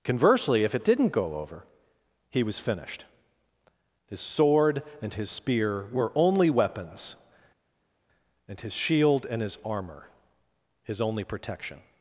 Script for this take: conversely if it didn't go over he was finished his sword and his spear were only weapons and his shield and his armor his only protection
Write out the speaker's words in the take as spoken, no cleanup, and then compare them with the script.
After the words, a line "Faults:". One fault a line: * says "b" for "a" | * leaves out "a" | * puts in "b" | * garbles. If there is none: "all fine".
conversely if it didn't go over he was finished his sword and his spear were only weapons and his shield and his armor his only protection
Faults:
all fine